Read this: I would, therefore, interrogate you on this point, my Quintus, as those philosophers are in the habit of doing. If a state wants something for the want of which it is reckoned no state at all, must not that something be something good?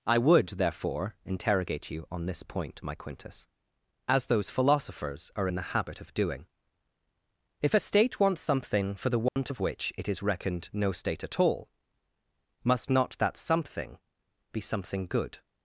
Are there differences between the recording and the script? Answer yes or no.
no